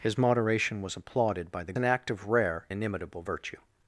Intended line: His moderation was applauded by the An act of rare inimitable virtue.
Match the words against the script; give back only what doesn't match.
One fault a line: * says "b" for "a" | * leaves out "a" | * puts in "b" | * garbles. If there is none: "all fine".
all fine